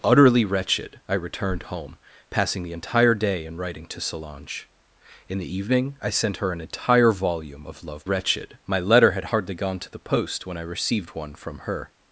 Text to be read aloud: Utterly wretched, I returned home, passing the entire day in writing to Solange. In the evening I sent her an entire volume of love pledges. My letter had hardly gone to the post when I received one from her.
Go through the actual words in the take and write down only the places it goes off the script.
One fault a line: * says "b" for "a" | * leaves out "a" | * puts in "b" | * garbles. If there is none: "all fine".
* says "wretched" for "pledges"